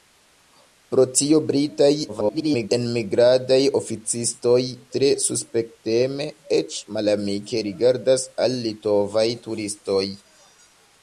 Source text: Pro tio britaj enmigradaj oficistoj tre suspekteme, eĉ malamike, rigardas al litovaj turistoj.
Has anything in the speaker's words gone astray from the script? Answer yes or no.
yes